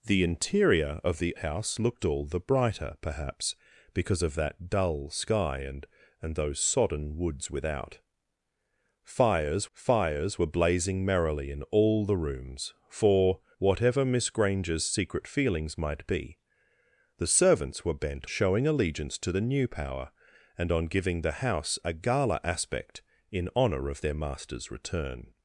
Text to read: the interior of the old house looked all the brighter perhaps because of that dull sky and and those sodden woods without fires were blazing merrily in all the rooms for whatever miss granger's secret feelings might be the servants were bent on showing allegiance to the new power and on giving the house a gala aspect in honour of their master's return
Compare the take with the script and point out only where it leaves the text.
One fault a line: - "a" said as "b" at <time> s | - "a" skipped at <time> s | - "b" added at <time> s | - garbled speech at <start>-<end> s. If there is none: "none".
- "old" skipped at 1.4 s
- "fires" added at 9.7 s
- "on" skipped at 18.3 s